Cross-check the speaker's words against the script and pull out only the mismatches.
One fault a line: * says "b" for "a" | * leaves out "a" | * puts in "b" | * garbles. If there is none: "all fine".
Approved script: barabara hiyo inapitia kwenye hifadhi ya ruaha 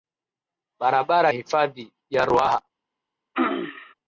* leaves out "hiyo inapitia kwenye"